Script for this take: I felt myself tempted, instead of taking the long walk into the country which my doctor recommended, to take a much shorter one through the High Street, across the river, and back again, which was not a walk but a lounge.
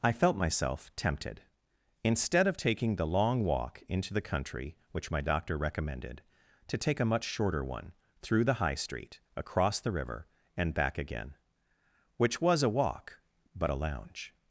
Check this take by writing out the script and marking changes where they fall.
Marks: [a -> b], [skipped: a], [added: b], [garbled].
I felt myself tempted, instead of taking the long walk into the country which my doctor recommended, to take a much shorter one through the High Street, across the river, and back again, which was [skipped: not] a walk but a lounge.